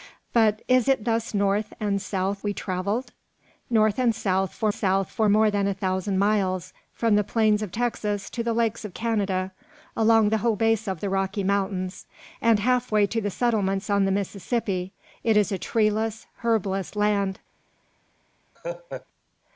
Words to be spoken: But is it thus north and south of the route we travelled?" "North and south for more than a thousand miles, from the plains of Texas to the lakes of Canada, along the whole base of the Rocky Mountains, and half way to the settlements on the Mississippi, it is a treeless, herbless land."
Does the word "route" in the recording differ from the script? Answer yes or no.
yes